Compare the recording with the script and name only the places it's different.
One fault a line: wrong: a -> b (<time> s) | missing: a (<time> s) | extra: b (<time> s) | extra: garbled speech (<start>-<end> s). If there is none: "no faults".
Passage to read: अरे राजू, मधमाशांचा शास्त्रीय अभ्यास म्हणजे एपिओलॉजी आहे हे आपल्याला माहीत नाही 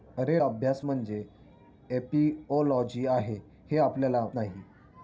missing: राजू मधमाशांचा शास्त्रीय (0.4 s)
missing: माहीत (4.3 s)